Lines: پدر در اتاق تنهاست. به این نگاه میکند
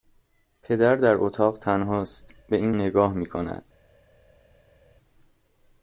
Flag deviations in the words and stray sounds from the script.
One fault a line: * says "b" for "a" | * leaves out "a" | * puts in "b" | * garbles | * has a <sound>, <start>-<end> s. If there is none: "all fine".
all fine